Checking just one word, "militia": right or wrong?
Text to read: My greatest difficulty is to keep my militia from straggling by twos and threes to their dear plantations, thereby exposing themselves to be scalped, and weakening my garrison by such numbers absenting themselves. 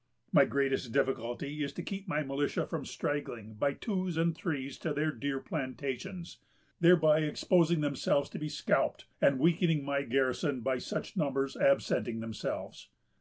right